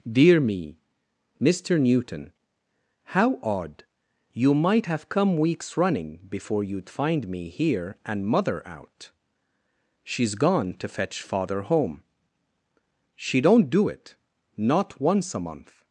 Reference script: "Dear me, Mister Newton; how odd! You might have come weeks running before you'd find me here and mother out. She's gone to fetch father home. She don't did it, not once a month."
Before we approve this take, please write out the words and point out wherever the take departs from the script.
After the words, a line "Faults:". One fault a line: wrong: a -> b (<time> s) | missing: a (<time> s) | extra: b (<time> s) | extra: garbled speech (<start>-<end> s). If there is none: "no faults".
"Dear me, Mister Newton; how odd! You might have come weeks running before you'd find me here and mother out. She's gone to fetch father home. She don't do it, not once a month."
Faults:
wrong: did -> do (13.7 s)